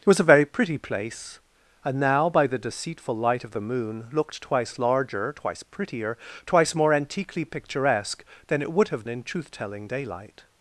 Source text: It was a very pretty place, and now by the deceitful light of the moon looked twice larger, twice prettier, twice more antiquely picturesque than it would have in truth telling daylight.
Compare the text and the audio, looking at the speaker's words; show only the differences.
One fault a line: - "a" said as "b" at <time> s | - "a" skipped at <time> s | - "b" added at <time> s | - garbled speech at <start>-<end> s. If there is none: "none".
none